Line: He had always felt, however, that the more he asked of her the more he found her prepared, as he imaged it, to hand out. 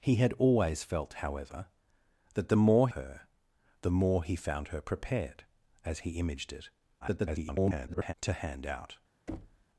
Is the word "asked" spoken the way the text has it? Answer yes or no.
no